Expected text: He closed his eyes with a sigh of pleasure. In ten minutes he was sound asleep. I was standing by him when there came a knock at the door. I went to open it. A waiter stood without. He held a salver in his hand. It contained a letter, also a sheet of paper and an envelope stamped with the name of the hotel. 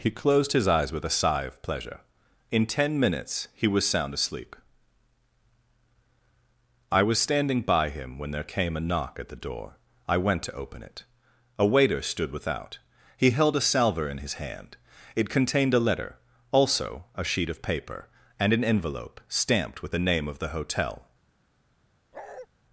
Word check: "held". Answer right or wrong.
right